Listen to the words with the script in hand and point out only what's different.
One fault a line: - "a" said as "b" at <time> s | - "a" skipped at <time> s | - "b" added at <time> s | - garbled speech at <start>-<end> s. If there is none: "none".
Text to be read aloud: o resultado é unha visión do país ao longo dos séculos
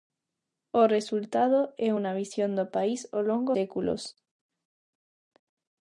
- "dos" skipped at 3.5 s